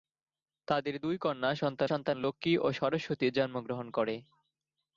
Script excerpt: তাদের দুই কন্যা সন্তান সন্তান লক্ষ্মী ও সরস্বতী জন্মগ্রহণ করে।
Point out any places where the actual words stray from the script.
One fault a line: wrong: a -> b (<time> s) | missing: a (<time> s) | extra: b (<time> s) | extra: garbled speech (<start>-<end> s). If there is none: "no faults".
no faults